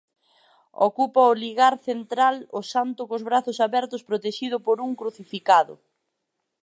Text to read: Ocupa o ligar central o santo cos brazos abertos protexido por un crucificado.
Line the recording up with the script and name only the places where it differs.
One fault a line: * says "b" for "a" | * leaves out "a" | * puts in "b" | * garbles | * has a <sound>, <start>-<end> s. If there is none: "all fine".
all fine